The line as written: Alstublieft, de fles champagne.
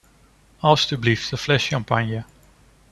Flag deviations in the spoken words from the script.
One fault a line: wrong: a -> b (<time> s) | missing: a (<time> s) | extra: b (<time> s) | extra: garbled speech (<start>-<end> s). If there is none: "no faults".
no faults